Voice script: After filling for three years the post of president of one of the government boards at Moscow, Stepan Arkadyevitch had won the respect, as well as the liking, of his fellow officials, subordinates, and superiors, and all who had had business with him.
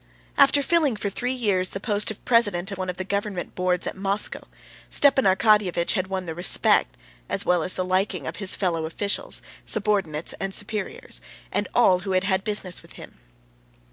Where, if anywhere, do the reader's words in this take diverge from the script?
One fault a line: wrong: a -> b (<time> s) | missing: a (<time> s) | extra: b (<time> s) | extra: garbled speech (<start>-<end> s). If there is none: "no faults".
missing: of (2.7 s)